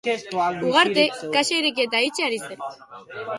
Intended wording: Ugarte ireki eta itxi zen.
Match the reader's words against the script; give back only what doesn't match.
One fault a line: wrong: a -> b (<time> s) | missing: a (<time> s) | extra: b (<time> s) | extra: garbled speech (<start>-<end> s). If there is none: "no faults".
extra: kaxa (1.4 s)
extra: ari (2.3 s)